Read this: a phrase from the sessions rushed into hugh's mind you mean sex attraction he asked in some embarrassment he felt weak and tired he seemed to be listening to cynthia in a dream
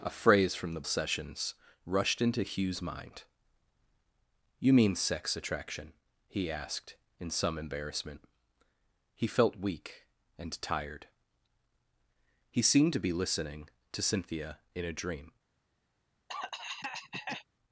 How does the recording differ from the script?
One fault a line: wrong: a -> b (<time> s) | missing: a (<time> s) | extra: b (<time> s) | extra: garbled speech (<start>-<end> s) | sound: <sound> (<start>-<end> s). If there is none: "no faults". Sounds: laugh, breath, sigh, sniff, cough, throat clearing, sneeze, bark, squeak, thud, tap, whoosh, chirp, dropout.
sound: cough (16.3-17.5 s)